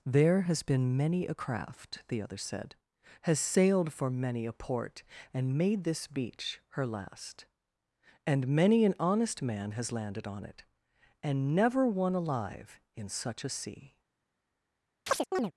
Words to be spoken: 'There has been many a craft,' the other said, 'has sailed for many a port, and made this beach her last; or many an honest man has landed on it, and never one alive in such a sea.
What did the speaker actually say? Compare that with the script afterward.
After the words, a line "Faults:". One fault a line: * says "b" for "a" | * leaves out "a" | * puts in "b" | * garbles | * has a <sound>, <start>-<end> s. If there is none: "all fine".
'There has been many a craft,' the other said, 'has sailed for many a port, and made this beach her last; and many an honest man has landed on it, and never one alive in such a sea.
Faults:
* says "and" for "or"
* has a chirp, 15.1-15.5 s